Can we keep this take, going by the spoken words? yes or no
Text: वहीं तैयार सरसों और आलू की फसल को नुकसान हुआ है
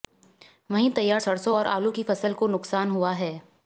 yes